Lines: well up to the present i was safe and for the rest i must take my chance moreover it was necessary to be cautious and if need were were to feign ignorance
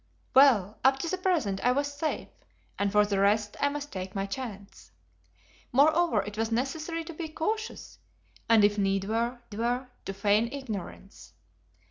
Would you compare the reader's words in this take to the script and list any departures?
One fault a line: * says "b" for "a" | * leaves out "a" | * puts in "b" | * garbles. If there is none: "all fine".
all fine